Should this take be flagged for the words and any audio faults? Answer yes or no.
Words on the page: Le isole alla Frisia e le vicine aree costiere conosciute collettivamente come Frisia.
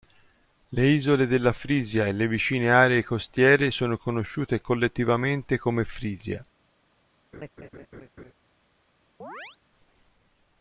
yes